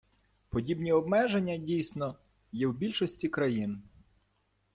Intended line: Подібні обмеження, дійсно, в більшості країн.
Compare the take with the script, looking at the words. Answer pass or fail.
fail